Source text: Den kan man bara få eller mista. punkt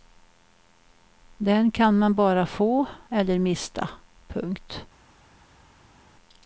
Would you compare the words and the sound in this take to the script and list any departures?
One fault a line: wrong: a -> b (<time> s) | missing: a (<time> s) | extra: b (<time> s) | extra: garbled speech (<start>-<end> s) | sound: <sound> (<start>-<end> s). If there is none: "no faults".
no faults